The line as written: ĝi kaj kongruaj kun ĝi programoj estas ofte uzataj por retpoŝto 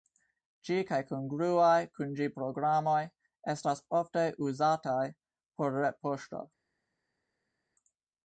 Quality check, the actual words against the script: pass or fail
pass